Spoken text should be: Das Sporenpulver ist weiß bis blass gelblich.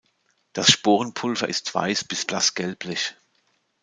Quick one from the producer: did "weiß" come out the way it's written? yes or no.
yes